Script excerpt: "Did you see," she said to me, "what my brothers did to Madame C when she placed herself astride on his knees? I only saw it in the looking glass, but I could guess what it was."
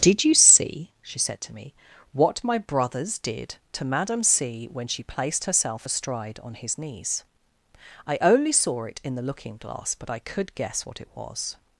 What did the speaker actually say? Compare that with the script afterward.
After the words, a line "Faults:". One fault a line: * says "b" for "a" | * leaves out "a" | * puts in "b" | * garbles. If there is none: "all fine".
"Did you see," she said to me, "what my brothers did to Madame C when she placed herself astride on his knees? I only saw it in the looking glass, but I could guess what it was."
Faults:
all fine